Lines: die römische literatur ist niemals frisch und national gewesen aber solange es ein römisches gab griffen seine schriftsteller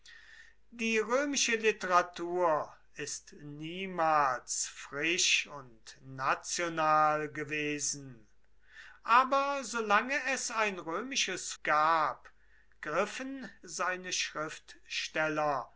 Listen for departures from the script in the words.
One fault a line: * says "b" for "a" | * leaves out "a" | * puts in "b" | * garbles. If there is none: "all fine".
all fine